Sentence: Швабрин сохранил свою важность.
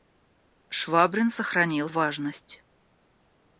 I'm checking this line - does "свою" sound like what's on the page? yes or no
no